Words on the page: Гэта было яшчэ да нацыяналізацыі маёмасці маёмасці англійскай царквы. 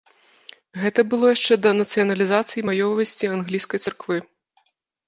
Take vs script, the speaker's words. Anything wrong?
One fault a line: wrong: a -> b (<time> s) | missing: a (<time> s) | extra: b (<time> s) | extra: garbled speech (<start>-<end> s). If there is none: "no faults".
missing: маёмасці (3.3 s)